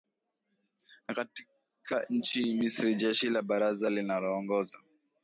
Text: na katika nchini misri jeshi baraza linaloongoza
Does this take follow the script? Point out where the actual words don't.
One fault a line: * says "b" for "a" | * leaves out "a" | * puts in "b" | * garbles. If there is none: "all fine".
* puts in "la"